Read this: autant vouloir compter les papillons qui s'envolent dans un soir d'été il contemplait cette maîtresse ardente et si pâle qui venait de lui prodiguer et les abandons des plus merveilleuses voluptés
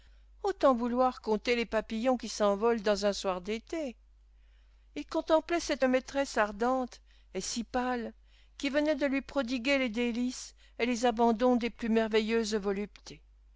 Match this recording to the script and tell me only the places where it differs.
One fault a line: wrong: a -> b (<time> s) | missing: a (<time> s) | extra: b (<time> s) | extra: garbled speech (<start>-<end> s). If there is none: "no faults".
extra: les délices (9.8 s)